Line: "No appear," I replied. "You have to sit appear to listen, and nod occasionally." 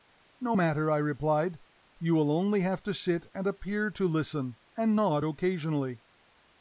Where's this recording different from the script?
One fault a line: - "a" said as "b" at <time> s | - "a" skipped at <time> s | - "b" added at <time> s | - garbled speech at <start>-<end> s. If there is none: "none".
- "appear" said as "matter" at 0.5 s
- "will only" added at 2.1 s
- "and" added at 3.3 s